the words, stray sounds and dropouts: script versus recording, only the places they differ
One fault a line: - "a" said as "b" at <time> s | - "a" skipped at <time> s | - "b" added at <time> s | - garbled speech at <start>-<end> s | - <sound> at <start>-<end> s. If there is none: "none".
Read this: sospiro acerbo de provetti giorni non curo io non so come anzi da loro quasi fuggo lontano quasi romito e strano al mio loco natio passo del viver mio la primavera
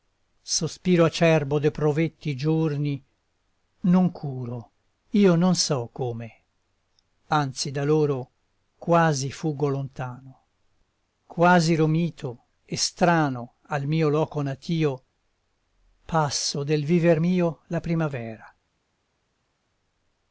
none